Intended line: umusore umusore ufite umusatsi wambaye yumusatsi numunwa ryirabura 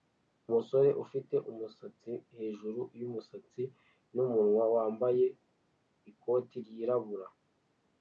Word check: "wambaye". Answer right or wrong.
wrong